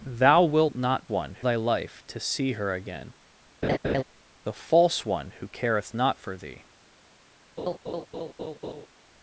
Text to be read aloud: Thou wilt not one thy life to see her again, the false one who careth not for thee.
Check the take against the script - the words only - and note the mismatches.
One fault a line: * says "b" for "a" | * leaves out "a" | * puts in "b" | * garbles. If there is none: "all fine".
all fine